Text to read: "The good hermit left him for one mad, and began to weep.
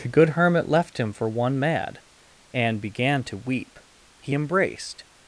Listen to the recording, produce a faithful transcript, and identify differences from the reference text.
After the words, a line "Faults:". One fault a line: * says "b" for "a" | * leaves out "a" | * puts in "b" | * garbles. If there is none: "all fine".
"The good hermit left him for one mad, and began to weep. He embraced
Faults:
* puts in "He embraced"